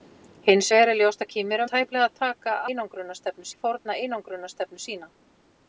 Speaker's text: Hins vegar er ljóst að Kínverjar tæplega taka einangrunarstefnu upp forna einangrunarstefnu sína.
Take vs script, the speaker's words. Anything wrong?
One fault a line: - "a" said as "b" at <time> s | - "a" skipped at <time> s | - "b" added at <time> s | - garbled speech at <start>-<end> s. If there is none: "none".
none